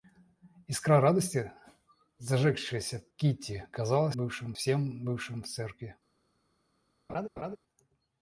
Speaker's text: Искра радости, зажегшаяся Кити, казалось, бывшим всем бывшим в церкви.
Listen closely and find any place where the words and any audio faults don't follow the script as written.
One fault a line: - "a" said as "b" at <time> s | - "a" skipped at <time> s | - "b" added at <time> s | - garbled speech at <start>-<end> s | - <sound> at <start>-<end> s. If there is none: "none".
- laugh at 7.1-7.6 s